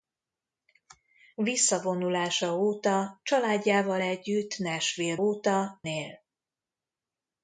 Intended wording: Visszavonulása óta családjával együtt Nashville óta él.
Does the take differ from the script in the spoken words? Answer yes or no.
no